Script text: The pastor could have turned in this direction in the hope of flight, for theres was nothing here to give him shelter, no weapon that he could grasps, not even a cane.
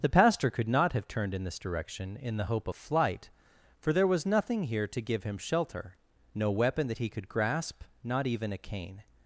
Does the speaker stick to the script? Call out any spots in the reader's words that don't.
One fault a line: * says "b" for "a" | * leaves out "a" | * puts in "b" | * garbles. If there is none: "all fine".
* puts in "not"
* says "there" for "theres"
* says "grasp" for "grasps"